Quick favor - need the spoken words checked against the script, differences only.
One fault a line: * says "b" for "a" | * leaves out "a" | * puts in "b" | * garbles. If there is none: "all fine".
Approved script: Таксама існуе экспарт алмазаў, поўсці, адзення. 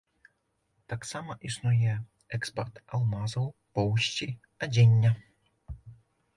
all fine